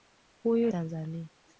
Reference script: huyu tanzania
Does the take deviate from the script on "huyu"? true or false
false